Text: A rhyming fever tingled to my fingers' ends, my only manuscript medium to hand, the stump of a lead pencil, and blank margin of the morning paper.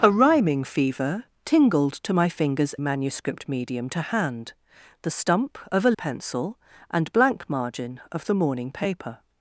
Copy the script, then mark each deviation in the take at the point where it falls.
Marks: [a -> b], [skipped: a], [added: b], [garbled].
A rhyming fever tingled to my fingers' [skipped: ends, my only] manuscript medium to hand, the stump of a [skipped: lead] pencil, and blank margin of the morning paper.